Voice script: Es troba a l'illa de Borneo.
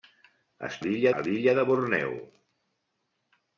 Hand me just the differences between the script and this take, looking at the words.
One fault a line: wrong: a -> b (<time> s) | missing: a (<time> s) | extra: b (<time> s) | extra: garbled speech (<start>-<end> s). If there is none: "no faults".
wrong: troba -> l'illa (0.9 s)